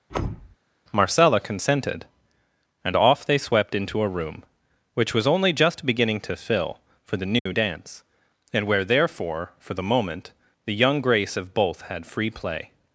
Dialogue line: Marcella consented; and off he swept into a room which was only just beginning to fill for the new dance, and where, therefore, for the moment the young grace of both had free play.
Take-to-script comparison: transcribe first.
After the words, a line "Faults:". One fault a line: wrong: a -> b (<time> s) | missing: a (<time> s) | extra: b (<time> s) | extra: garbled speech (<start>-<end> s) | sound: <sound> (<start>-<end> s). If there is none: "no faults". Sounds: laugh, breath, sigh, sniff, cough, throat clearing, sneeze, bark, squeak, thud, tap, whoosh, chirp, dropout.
Marcella consented; and off they swept into a room which was only just beginning to fill for the new dance, and where, therefore, for the moment the young grace of both had free play.
Faults:
sound: thud (0.1-0.6 s)
wrong: he -> they (3.2 s)
sound: dropout (7.4-7.5 s)